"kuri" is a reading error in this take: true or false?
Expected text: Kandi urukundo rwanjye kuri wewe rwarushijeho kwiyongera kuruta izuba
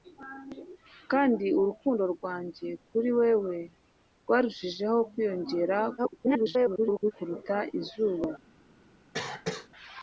false